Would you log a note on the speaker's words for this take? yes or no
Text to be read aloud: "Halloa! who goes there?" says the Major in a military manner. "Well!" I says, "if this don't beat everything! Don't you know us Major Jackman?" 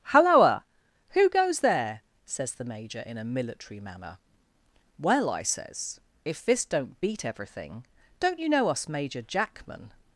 no